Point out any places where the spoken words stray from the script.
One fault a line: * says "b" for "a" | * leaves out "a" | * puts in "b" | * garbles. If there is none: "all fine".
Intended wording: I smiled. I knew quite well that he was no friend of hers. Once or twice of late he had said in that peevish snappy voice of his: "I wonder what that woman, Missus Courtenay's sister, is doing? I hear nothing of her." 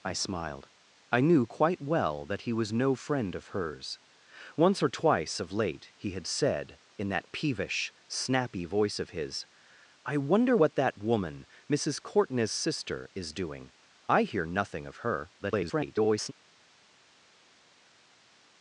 * garbles